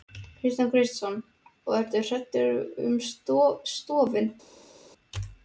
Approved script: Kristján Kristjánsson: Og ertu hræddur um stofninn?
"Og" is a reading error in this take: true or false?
false